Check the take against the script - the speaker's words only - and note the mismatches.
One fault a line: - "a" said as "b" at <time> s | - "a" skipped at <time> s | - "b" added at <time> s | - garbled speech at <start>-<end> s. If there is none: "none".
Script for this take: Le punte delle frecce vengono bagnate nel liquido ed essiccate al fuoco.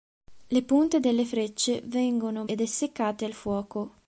- "bagnate nel liquido" skipped at 2.4 s